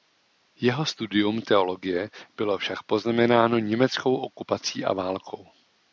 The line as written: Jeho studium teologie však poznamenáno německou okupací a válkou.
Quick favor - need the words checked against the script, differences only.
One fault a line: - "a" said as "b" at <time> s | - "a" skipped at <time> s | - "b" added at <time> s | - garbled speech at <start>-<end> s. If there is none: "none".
- "bylo" added at 2.4 s